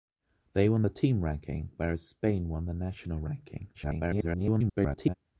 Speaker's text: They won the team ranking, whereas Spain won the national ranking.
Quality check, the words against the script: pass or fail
fail